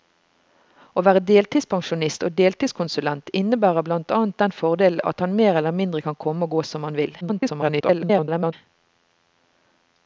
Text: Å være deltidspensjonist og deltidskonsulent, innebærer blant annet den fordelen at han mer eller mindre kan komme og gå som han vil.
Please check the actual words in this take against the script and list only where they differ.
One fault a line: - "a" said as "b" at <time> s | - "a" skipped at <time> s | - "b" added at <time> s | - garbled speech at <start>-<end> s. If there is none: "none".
- garbled speech at 7.2-8.5 s